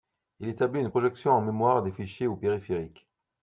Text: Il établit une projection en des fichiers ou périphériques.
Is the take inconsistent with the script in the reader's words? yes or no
yes